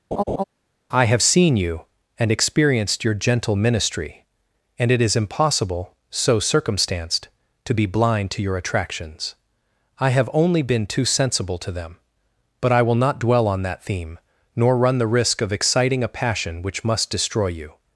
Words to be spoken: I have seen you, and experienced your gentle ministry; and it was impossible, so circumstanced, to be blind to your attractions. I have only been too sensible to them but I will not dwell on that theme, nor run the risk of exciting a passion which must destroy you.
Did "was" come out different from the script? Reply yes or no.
yes